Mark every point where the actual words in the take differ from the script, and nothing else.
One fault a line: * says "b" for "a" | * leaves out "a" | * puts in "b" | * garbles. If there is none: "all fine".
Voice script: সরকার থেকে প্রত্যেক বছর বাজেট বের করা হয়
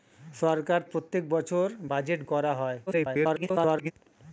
* leaves out "থেকে"
* leaves out "বের"
* garbles